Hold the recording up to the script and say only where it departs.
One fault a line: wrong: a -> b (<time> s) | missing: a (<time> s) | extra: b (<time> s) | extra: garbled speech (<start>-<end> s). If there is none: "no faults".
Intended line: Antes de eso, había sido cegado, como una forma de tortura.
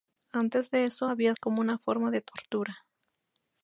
missing: sido cegado (1.3 s)